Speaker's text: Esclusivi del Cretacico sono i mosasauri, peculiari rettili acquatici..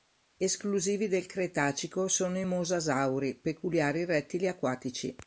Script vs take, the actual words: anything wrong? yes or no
no